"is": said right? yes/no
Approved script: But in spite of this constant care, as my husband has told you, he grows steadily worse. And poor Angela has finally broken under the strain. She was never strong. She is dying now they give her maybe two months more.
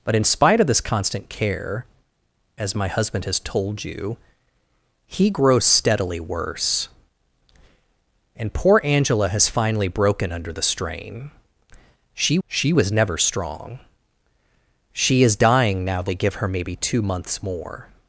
yes